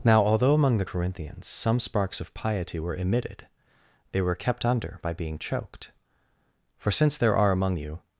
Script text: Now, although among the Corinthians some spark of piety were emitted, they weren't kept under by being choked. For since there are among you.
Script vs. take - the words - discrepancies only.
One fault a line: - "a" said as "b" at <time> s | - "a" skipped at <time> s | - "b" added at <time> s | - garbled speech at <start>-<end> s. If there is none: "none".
- "spark" said as "sparks" at 1.8 s
- "weren't" said as "were" at 4.2 s